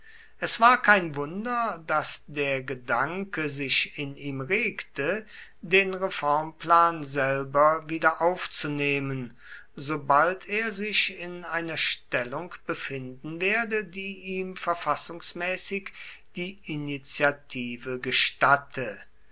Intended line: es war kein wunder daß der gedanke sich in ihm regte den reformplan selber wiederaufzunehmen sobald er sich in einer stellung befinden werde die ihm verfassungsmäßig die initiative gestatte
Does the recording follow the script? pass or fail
pass